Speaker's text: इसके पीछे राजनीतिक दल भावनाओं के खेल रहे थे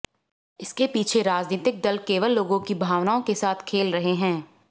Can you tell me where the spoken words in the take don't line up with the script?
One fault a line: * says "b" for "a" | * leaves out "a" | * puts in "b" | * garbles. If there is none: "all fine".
* puts in "केवल लोगों की"
* puts in "साथ"
* says "हैं" for "थे"